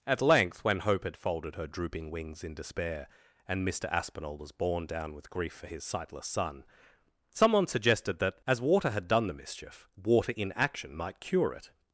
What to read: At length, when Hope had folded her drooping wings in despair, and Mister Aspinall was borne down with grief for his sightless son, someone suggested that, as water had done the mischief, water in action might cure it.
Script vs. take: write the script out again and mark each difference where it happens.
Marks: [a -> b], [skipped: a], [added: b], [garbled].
At length, when Hope had folded her drooping wings in despair, and Mister Aspinall was borne down with grief for his sightless son, someone suggested that, as water had done the mischief, water in action might cure it.